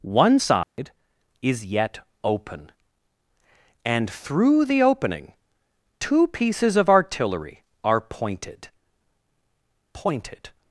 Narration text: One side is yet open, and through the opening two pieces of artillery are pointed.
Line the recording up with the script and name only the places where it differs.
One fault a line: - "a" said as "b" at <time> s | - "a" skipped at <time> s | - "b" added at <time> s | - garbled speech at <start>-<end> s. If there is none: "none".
- "pointed" added at 9.9 s